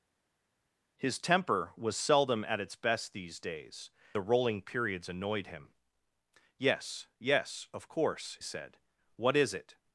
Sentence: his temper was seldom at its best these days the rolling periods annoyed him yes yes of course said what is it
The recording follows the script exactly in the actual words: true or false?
true